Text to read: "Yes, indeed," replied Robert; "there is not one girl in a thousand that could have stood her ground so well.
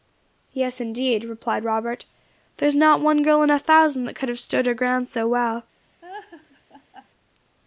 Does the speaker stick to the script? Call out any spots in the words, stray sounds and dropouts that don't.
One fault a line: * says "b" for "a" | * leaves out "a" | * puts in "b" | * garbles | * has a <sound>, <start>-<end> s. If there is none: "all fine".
* has a laugh, 6.0-7.1 s